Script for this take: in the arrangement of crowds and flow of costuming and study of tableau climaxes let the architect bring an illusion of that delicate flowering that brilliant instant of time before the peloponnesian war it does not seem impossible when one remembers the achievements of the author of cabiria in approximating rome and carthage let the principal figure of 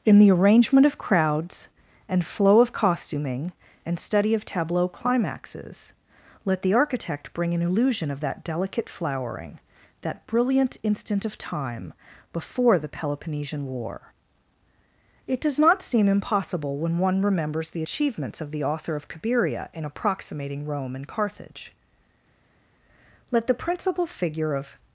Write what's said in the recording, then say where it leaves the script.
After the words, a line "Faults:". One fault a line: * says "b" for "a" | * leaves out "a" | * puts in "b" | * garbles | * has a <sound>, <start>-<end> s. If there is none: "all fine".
in the arrangement of crowds and flow of costuming and study of tableau climaxes let the architect bring an illusion of that delicate flowering that brilliant instant of time before the peloponnesian war it does not seem impossible when one remembers the achievements of the author of cabiria in approximating rome and carthage let the principal figure of
Faults:
all fine